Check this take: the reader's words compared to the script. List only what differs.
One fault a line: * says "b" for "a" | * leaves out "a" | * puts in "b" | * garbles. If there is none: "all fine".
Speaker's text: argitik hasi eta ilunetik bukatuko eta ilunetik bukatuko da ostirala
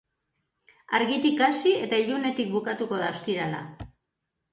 * leaves out "eta ilunetik bukatuko"